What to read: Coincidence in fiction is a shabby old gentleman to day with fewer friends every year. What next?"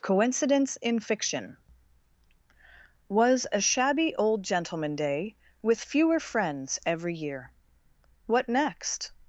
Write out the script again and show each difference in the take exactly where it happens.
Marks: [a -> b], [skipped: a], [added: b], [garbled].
Coincidence in fiction [is -> was] a shabby old gentleman [skipped: to] day with fewer friends every year. What next?"